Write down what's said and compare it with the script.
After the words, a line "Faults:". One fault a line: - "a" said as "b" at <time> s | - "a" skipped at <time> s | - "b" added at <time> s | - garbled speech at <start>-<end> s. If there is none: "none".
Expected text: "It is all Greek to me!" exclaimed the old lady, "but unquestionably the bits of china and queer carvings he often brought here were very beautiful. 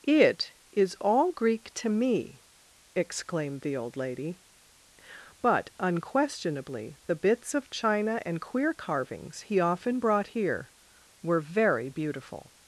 "It is all Greek to me!" exclaimed the old lady, "but unquestionably the bits of china and queer carvings he often brought here were very beautiful.
Faults:
none